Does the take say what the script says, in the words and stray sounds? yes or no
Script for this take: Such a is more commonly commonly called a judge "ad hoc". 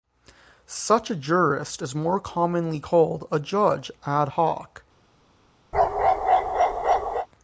no